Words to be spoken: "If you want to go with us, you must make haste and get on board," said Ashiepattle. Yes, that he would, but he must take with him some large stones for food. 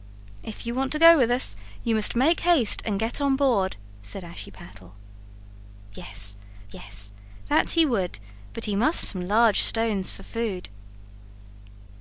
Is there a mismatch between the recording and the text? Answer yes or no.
yes